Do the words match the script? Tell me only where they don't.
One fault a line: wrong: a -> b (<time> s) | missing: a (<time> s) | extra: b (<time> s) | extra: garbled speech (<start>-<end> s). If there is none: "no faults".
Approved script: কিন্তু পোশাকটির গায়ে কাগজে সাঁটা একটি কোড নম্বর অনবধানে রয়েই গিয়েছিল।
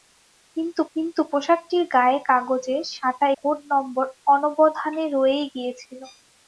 extra: কিন্তু (1.0 s)
missing: একটি (3.3 s)